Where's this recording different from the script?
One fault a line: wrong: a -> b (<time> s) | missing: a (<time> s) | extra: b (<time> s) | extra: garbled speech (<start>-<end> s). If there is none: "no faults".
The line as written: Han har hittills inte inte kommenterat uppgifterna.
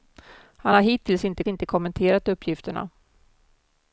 no faults